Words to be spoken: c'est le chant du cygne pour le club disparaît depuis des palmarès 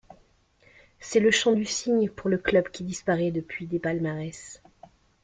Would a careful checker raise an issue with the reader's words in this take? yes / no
yes